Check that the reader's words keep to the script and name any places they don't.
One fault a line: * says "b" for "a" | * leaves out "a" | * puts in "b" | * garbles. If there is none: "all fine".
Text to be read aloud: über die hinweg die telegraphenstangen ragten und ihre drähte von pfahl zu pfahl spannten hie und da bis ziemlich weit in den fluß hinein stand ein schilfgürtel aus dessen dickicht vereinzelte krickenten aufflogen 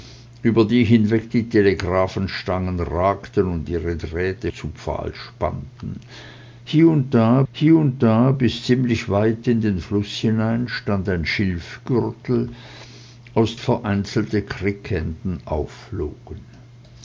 * leaves out "von pfahl"
* puts in "hie und da"
* leaves out "dessen dickicht"